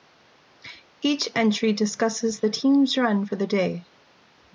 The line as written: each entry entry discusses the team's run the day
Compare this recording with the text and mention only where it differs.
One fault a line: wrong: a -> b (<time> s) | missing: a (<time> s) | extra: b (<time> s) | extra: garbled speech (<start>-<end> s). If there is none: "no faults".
missing: entry (1.7 s)
extra: for (3.2 s)